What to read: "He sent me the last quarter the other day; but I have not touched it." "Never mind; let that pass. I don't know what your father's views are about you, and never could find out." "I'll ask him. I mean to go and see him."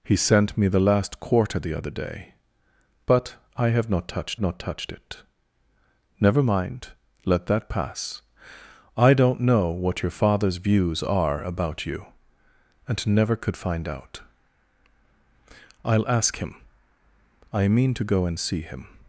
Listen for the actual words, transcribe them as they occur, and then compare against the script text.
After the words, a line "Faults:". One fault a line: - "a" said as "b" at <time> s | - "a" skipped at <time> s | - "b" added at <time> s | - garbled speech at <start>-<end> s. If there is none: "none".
"He sent me the last quarter the other day; but I have not touched not touched it." "Never mind; let that pass. I don't know what your father's views are about you, and never could find out." "I'll ask him. I mean to go and see him."
Faults:
- "not touched" added at 4.4 s